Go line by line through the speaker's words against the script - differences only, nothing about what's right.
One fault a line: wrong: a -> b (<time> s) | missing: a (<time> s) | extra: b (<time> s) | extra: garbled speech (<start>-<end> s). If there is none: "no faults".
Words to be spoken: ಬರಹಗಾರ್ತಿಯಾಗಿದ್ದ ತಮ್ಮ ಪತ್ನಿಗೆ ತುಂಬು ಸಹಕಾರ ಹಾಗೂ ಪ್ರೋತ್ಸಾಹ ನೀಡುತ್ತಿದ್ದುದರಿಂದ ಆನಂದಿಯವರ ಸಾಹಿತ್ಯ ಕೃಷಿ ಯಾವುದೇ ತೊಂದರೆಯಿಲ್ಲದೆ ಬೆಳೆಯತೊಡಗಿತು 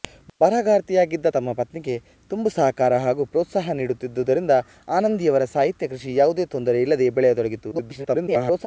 extra: garbled speech (7.7-8.7 s)